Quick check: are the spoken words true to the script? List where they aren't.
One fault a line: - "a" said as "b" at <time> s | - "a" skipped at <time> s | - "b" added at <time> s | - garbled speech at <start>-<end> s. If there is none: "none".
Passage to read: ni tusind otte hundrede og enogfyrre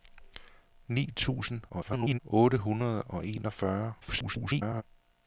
- garbled speech at 1.7-2.2 s
- garbled speech at 4.0-4.8 s